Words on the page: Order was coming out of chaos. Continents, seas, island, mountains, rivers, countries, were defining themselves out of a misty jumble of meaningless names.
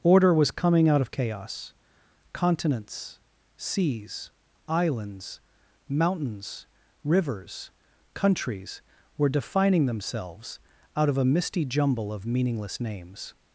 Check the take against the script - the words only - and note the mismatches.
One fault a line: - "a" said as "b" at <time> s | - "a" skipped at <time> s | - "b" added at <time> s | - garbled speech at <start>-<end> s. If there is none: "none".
- "island" said as "islands" at 4.7 s